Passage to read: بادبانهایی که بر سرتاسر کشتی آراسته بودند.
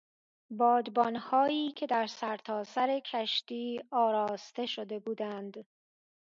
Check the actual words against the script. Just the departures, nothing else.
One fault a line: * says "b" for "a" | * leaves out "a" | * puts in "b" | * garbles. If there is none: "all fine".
* says "در" for "بر"
* puts in "شده"